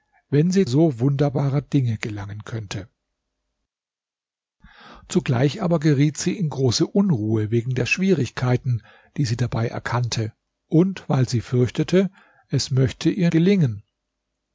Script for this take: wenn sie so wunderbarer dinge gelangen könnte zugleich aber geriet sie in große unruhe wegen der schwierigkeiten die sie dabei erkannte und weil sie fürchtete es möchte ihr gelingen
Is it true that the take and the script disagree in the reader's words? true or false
false